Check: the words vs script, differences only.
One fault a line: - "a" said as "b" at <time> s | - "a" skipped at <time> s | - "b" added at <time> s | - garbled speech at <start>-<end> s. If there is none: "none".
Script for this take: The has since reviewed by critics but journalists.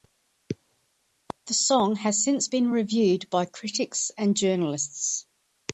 - "song" added at 1.5 s
- "been" added at 2.4 s
- "but" said as "and" at 4.2 s